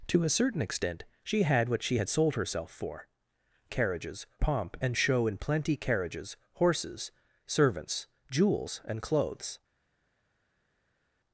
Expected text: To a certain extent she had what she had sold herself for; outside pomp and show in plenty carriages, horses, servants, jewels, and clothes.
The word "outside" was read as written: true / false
false